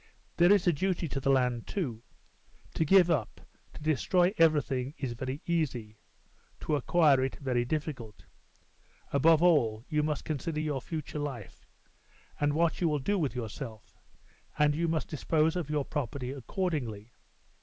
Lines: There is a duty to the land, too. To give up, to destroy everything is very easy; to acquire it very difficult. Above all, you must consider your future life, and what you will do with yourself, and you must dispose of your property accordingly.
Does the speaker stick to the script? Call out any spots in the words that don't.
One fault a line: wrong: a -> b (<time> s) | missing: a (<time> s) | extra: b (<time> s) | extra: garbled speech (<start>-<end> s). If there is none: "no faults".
no faults